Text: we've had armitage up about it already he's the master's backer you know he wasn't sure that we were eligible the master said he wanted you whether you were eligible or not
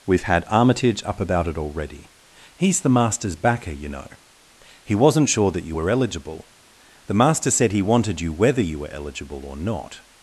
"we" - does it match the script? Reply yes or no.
no